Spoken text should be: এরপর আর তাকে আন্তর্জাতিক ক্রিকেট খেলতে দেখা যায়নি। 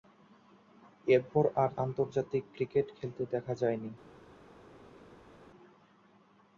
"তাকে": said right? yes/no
no